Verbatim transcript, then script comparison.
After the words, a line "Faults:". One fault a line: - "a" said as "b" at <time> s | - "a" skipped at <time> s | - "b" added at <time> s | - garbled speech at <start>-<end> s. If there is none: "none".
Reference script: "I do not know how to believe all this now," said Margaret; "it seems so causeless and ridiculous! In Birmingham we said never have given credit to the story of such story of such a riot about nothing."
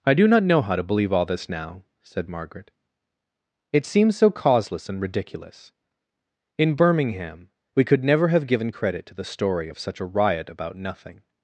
"I do not know how to believe all this now," said Margaret; "it seems so causeless and ridiculous! In Birmingham we could never have given credit to the story of such a riot about nothing."
Faults:
- "said" said as "could" at 7.8 s
- "story of such" skipped at 10.0 s